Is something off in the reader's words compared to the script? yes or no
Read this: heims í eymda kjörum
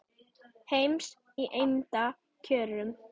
no